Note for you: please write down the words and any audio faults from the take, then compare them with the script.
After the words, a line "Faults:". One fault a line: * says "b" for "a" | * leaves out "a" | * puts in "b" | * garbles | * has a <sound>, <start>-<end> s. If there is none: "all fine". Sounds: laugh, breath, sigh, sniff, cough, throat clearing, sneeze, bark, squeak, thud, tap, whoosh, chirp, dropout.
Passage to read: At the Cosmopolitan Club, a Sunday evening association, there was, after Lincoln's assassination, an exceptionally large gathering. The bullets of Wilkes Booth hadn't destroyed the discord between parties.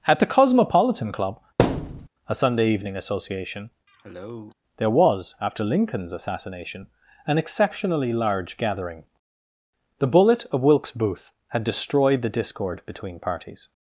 At the Cosmopolitan Club, a Sunday evening association, there was, after Lincoln's assassination, an exceptionally large gathering. The bullet of Wilkes Booth had destroyed the discord between parties.
Faults:
* has a thud, 1.6-2.1 s
* has a cough, 3.9-4.5 s
* says "bullet" for "bullets"
* says "had" for "hadn't"